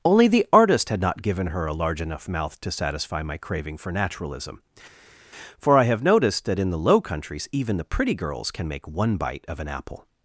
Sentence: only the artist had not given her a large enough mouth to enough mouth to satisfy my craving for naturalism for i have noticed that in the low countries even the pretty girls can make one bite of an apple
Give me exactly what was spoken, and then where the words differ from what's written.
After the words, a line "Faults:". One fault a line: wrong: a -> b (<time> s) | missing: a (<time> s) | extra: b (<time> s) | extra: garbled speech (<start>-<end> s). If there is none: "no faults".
only the artist had not given her a large enough mouth to satisfy my craving for naturalism for i have noticed that in the low countries even the pretty girls can make one bite of an apple
Faults:
missing: enough mouth to (2.7 s)